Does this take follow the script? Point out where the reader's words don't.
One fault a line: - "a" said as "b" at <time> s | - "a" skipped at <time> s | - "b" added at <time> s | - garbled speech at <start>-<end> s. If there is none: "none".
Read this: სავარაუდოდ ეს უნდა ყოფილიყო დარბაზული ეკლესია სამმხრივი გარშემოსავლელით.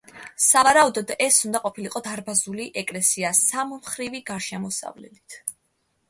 none